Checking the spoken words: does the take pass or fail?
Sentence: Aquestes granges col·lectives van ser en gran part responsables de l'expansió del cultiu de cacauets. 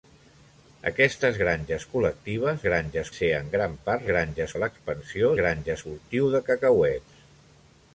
fail